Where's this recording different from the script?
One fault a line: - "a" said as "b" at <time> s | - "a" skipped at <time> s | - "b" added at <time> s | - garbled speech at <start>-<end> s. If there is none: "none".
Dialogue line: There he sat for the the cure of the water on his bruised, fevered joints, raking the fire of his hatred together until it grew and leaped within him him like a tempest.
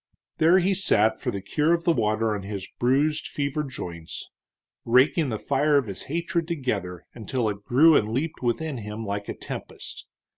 - "the" skipped at 1.4 s
- "him" skipped at 9.1 s